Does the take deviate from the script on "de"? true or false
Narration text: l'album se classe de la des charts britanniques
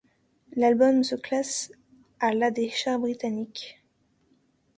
true